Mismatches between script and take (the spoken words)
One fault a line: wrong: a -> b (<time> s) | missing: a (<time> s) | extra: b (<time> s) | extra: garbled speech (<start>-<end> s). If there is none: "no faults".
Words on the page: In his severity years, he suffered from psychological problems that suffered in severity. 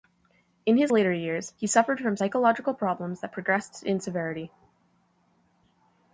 wrong: severity -> later (0.9 s)
wrong: suffered -> progressed (3.3 s)